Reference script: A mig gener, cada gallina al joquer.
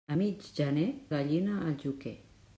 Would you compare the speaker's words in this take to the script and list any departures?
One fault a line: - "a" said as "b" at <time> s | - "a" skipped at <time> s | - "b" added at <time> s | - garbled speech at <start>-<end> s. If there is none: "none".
- "cada" skipped at 0.9 s